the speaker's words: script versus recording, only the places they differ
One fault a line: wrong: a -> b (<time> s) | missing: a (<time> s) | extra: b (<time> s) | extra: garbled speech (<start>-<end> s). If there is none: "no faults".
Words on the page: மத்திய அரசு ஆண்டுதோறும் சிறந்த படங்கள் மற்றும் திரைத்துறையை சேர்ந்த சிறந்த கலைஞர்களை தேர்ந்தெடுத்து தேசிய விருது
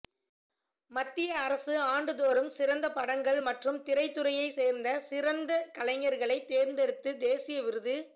no faults